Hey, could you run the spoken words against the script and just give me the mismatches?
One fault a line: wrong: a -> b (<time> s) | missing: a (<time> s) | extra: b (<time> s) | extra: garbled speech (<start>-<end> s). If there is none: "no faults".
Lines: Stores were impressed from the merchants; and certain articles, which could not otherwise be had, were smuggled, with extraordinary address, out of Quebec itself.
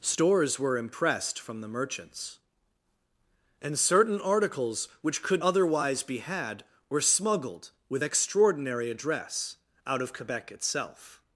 missing: not (5.4 s)